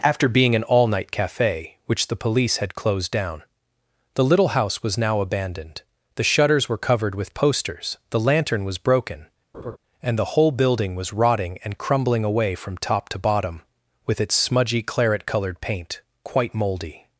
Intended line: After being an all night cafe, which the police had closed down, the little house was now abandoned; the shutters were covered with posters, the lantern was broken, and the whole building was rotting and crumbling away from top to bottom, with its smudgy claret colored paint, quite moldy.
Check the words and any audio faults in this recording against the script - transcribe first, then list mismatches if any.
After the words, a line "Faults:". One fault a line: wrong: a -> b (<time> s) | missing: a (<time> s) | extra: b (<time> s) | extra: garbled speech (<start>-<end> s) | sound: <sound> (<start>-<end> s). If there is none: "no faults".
After being an all night cafe, which the police had closed down, the little house was now abandoned; the shutters were covered with posters, the lantern was broken, and the whole building was rotting and crumbling away from top to bottom, with its smudgy claret colored paint, quite moldy.
Faults:
sound: laugh (9.5-9.8 s)